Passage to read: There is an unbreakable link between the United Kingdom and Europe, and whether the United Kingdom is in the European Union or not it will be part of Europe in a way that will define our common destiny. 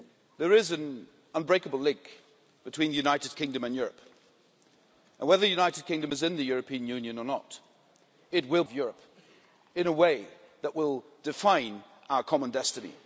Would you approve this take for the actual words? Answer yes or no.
no